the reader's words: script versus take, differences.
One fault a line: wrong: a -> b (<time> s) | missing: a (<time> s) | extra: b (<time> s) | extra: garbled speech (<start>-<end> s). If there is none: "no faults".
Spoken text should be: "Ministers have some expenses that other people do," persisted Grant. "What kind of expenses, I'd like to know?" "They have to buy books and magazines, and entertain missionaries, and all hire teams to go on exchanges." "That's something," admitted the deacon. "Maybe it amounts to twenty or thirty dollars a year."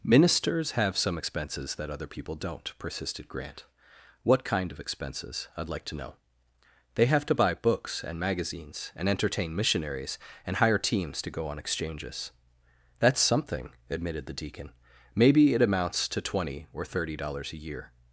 wrong: do -> don't (2.4 s)
missing: all (10.6 s)